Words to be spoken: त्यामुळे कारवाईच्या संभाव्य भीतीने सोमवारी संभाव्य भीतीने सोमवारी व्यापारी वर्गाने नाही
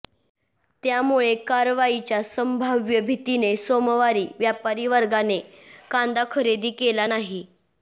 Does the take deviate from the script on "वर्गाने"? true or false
true